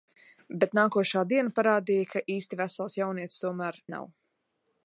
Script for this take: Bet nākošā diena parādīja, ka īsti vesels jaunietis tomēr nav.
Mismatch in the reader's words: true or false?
false